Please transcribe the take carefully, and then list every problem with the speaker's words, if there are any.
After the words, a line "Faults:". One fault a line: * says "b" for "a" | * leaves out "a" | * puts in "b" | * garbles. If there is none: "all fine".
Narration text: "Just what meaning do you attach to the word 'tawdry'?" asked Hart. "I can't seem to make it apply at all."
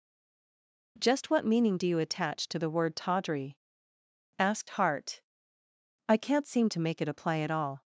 "Just what meaning do you attach to the word 'tawdry'?" asked Hart. "I can't seem to make it apply at all."
Faults:
all fine